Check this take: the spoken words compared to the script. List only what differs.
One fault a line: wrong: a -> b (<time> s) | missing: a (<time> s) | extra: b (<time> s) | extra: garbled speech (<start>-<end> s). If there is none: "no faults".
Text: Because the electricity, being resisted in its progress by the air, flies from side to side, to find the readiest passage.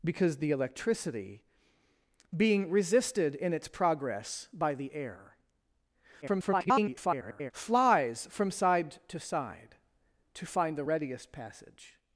extra: garbled speech (6.2-7.5 s)